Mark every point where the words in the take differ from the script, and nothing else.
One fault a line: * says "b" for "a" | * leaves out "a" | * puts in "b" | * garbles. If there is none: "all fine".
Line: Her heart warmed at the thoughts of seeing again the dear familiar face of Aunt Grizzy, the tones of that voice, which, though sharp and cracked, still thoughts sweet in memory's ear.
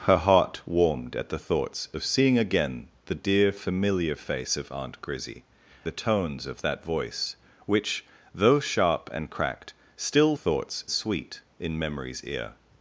all fine